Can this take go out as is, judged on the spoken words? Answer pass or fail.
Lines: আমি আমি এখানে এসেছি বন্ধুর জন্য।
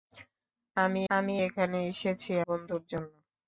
pass